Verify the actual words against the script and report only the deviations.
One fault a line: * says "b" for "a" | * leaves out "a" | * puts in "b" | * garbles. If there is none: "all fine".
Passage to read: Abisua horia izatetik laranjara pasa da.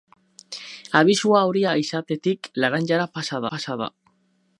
* puts in "pasa"